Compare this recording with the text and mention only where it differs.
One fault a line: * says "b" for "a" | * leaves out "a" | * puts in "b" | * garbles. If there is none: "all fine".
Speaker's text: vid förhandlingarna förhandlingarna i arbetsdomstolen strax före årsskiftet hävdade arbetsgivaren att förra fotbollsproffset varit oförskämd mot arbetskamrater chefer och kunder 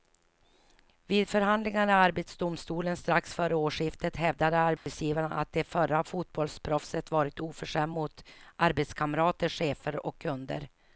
* leaves out "förhandlingarna"
* puts in "det"